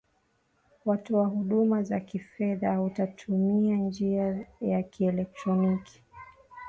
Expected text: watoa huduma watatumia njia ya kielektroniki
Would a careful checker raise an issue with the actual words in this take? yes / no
yes